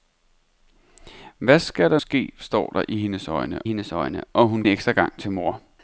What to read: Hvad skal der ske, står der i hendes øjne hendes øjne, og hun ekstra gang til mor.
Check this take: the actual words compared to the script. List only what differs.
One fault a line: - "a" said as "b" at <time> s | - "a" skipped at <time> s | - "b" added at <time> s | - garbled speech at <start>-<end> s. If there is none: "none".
none